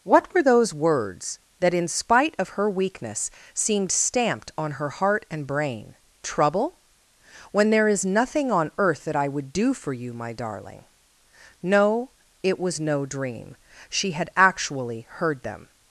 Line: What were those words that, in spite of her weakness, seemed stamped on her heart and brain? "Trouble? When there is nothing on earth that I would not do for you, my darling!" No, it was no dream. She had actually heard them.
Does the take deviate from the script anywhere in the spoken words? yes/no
yes